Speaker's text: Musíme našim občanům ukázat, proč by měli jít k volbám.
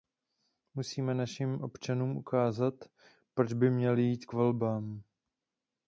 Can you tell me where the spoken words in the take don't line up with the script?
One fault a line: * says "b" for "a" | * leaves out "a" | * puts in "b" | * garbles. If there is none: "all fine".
all fine